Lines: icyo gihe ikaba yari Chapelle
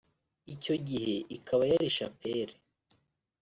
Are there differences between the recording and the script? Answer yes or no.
no